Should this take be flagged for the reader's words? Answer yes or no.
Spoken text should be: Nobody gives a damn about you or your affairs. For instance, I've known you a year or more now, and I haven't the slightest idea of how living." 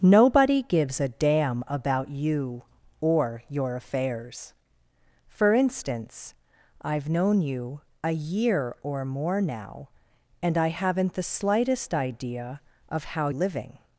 no